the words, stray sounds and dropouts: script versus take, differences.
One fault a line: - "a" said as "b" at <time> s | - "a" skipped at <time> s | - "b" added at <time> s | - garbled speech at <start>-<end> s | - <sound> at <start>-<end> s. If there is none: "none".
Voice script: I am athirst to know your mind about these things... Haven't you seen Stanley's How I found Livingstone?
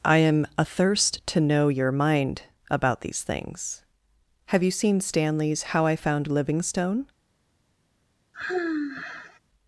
- "Haven't" said as "Have" at 4.5 s
- sigh at 8.3-9.4 s